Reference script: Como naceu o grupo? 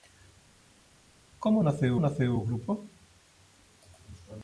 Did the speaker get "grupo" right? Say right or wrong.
right